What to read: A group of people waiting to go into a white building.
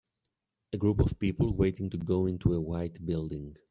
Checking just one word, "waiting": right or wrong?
right